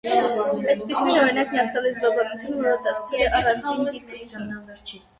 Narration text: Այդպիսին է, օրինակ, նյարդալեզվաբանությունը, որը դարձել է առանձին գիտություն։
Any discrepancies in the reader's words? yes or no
no